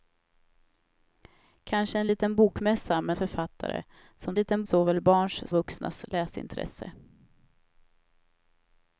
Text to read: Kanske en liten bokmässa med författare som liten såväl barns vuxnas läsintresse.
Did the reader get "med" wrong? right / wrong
right